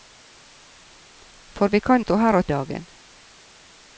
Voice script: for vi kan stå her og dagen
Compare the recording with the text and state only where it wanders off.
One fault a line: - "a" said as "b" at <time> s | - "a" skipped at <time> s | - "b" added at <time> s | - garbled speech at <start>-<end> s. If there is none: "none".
none